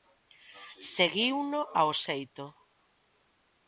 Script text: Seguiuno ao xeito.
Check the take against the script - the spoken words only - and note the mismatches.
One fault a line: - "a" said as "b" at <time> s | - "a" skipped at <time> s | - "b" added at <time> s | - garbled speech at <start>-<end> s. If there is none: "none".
none